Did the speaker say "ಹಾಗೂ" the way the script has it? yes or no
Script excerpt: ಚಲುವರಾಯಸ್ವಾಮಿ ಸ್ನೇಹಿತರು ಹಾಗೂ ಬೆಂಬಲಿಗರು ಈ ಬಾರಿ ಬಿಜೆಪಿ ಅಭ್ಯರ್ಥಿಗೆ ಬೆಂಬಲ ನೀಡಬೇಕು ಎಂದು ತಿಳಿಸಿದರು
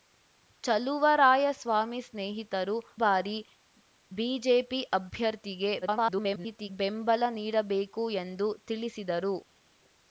no